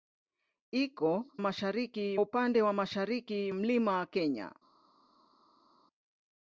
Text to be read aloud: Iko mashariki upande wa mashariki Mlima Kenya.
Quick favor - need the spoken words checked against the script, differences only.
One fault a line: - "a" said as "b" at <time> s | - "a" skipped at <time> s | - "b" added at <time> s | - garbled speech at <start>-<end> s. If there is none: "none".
none